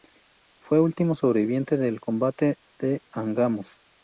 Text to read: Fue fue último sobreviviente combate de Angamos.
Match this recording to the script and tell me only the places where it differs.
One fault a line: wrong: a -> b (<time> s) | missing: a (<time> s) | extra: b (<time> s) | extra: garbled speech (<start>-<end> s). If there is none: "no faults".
missing: fue (0.8 s)
extra: del (1.8 s)